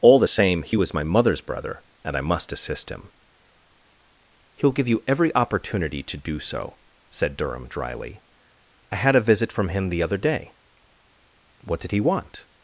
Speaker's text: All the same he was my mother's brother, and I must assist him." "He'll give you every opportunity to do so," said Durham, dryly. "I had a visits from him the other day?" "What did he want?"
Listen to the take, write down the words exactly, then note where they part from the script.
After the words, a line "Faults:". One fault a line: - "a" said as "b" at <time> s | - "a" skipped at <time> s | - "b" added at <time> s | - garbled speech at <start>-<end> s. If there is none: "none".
All the same he was my mother's brother, and I must assist him." "He'll give you every opportunity to do so," said Durham, dryly. "I had a visit from him the other day?" "What did he want?"
Faults:
- "visits" said as "visit" at 9.2 s